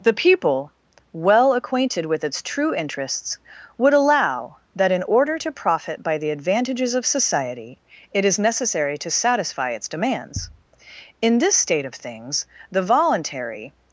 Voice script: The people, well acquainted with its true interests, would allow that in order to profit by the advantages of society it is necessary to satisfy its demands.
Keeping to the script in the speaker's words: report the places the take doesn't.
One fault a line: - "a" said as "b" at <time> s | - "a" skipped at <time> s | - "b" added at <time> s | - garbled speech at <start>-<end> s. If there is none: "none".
- "In this state of things the voluntary" added at 11.2 s